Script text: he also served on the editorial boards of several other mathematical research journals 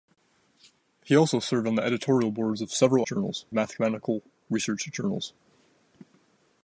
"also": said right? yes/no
yes